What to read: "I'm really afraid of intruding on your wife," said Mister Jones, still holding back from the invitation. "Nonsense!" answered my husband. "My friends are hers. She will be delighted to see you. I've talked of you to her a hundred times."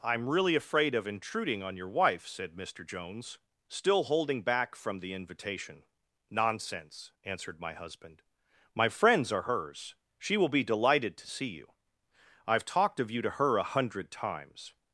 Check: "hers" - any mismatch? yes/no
no